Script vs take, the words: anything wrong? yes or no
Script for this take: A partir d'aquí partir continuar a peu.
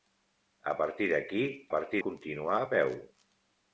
no